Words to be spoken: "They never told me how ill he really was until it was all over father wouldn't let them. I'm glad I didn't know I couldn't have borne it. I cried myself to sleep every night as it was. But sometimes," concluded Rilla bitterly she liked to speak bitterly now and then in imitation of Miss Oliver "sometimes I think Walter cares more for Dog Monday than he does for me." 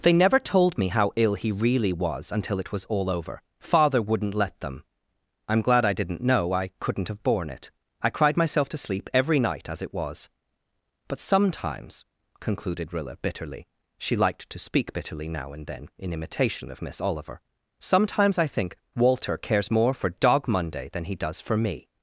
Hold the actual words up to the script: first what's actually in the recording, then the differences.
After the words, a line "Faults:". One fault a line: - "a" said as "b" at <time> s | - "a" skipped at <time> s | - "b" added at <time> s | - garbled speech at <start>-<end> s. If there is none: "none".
"They never told me how ill he really was until it was all over father wouldn't let them. I'm glad I didn't know I couldn't have borne it. I cried myself to sleep every night as it was. But sometimes," concluded Rilla bitterly she liked to speak bitterly now and then in imitation of Miss Oliver "sometimes I think Walter cares more for Dog Monday than he does for me."
Faults:
none